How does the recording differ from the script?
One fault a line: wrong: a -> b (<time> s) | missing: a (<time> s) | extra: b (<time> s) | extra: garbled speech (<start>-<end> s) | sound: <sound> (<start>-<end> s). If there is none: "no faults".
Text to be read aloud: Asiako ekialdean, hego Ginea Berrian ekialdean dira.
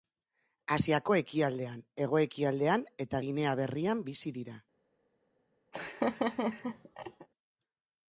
extra: ekialdean eta (2.2 s)
wrong: ekialdean -> bizi (4.1 s)
sound: laugh (5.7-7.3 s)